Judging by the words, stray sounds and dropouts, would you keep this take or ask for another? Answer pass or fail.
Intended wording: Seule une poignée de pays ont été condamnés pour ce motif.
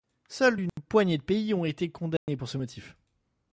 fail